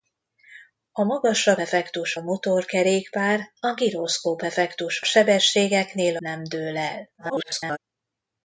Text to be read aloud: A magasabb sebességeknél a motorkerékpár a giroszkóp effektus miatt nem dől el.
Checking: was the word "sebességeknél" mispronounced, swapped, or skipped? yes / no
yes